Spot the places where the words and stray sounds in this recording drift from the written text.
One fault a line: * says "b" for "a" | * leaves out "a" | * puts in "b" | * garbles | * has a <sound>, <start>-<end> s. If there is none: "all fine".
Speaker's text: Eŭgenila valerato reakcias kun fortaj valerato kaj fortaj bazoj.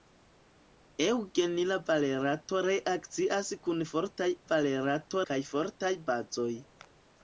all fine